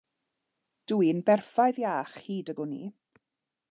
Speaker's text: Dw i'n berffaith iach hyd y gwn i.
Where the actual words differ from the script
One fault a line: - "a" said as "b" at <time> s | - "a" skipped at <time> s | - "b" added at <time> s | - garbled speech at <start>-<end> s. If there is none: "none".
none